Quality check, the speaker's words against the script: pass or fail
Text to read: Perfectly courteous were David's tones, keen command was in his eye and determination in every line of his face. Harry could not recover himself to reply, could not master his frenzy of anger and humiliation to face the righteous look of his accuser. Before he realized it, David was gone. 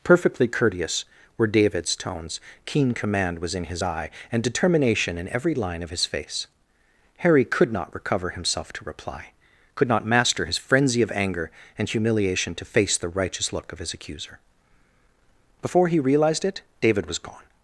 pass